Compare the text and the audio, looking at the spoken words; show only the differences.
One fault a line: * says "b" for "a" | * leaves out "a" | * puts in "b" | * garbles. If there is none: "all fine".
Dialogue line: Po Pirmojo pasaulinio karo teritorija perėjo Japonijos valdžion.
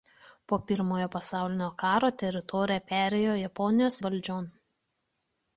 all fine